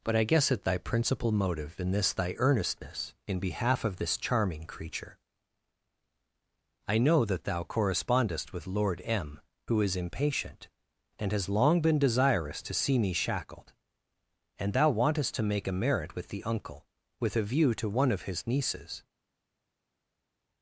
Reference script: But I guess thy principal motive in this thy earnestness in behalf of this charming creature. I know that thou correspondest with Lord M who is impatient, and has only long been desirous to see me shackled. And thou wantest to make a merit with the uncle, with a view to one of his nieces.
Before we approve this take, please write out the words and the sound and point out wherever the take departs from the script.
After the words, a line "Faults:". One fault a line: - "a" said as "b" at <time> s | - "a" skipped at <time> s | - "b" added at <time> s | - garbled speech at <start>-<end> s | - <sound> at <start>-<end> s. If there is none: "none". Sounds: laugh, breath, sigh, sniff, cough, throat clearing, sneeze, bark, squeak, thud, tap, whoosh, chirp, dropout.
But I guess at thy principal motive in this thy earnestness in behalf of this charming creature. I know that thou correspondest with Lord M who is impatient, and has long been desirous to see me shackled. And thou wantest to make a merit with the uncle, with a view to one of his nieces.
Faults:
- "at" added at 0.5 s
- "only" skipped at 11.5 s